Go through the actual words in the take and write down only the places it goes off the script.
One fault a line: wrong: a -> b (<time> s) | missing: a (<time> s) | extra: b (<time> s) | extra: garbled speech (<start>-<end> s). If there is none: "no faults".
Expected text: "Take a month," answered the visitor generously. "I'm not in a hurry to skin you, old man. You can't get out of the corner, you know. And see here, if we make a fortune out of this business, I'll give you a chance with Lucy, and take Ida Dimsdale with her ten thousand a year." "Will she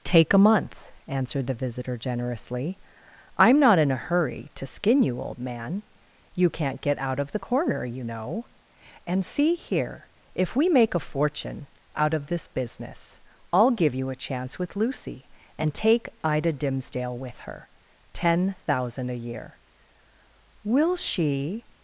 no faults